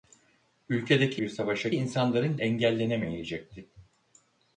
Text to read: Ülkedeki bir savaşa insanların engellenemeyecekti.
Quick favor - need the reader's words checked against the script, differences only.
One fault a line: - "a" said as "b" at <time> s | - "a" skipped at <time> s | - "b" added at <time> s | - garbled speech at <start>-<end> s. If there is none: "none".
none